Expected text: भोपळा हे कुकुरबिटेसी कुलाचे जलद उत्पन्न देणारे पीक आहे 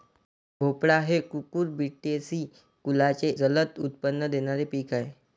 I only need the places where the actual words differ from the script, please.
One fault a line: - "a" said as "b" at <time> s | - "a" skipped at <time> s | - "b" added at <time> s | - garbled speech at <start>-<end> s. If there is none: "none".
none